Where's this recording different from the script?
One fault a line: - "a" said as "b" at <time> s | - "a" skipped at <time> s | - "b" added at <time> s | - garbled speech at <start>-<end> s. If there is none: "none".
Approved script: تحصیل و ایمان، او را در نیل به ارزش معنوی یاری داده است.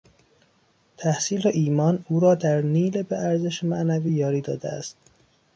none